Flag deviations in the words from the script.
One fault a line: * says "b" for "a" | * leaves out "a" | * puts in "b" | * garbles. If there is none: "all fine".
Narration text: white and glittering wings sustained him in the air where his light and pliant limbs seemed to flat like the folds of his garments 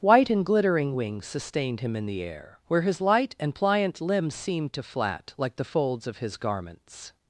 all fine